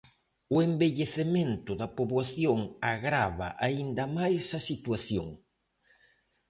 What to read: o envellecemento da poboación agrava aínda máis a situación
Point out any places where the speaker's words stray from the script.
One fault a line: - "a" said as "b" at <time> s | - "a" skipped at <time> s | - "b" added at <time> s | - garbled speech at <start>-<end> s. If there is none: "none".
none